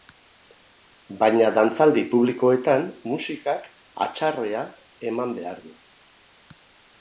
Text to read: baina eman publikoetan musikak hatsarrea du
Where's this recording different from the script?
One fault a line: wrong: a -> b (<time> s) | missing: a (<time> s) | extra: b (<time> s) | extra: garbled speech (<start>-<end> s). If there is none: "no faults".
wrong: eman -> dantzaldi (1.6 s)
extra: eman behar (5.1 s)